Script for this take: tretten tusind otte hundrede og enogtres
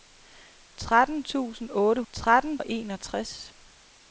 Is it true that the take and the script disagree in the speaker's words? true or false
true